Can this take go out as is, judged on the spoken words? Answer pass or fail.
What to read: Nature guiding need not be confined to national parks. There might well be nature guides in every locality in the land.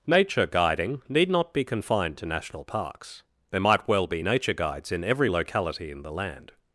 pass